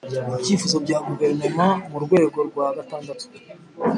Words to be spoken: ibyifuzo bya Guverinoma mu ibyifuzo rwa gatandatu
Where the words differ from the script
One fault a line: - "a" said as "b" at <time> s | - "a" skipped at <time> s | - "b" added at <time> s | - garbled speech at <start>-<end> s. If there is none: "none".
- "ibyifuzo" said as "rwego" at 2.0 s